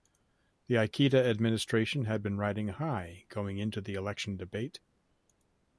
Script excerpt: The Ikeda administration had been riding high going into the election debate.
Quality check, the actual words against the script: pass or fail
pass